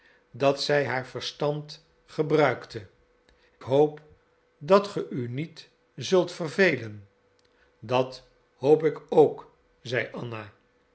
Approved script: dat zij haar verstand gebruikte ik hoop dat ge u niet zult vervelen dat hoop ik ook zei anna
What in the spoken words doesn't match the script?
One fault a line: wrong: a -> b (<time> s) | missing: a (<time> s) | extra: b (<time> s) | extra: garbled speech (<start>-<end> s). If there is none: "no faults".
missing: ik (2.9 s)